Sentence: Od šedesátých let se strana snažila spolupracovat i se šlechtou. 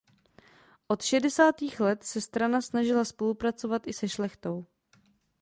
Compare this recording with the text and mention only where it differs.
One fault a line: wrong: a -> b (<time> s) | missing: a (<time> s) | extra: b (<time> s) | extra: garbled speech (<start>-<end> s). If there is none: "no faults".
no faults